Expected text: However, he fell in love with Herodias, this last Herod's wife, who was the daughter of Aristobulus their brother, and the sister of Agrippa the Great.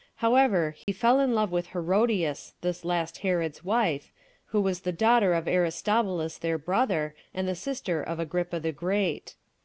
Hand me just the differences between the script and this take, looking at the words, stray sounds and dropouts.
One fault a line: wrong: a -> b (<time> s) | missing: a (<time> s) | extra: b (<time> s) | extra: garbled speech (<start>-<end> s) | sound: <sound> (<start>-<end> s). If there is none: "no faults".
sound: dropout (0.8-0.9 s)